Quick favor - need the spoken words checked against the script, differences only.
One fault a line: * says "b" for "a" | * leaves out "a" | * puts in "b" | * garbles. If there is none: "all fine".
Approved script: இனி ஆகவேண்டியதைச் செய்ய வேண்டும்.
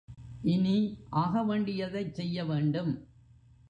all fine